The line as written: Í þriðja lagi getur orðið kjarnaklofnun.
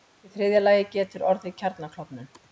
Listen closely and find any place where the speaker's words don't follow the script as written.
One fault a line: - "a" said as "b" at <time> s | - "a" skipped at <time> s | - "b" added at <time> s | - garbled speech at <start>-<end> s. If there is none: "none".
none